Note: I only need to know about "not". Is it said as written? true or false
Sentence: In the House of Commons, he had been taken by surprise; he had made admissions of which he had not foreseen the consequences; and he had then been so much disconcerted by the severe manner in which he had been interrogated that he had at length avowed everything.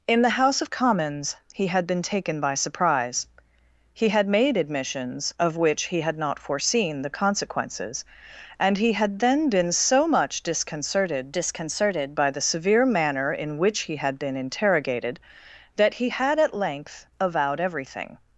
true